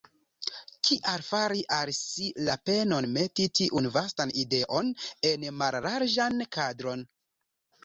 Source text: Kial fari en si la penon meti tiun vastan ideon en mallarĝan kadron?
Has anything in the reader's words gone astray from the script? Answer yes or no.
yes